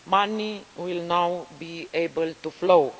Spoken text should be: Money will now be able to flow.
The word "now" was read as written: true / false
true